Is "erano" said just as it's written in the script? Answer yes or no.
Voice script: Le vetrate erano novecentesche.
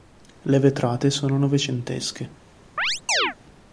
no